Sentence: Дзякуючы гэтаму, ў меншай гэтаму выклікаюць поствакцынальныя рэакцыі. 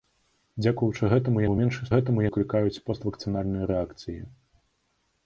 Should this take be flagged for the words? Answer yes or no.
no